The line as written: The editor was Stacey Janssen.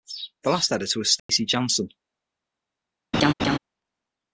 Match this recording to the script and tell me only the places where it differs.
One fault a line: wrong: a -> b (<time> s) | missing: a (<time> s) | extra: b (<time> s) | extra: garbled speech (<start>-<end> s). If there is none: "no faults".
extra: last (0.5 s)